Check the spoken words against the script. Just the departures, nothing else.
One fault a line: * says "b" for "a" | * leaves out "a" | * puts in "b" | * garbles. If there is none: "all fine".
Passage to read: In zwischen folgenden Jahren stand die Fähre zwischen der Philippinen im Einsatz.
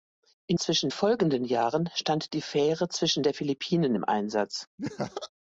all fine